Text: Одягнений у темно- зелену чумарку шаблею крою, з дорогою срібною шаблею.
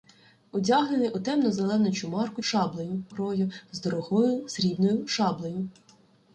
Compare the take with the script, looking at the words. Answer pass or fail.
pass